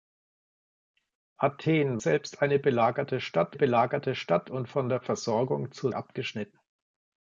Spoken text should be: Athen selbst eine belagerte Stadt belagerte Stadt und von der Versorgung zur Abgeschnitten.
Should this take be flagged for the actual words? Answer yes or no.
no